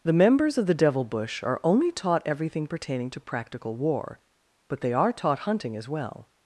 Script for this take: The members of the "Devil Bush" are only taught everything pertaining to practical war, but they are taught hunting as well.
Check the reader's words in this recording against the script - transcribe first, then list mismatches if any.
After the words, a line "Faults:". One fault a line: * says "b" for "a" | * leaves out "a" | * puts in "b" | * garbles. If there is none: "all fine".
The members of the "Devil Bush" are only taught everything pertaining to practical war, but they are taught hunting as well.
Faults:
all fine